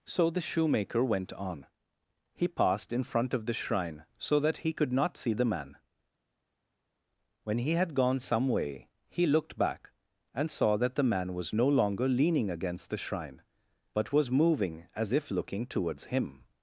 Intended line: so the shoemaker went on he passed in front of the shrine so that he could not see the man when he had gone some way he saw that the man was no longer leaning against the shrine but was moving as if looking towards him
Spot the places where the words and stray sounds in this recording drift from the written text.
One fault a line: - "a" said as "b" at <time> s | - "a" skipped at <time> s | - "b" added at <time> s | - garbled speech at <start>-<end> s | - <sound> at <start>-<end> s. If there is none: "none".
- "looked back and" added at 9.3 s